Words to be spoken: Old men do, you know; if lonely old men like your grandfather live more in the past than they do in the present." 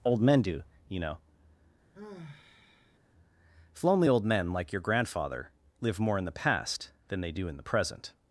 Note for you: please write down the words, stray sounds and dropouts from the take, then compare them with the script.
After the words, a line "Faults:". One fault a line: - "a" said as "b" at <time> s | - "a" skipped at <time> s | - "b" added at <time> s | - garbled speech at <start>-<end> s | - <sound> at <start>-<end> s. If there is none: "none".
Old men do, you know; if lonely old men like your grandfather live more in the past than they do in the present."
Faults:
- sigh at 1.9-3.0 s